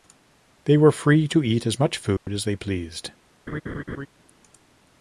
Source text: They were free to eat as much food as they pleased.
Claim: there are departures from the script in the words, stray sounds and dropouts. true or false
true